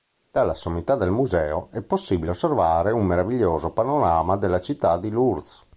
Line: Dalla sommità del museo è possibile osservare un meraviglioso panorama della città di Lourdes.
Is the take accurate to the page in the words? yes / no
yes